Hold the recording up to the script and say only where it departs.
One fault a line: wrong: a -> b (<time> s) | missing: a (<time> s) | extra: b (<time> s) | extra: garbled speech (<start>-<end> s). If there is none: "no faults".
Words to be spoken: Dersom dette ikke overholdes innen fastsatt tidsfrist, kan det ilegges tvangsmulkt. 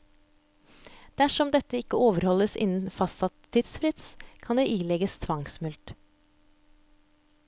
no faults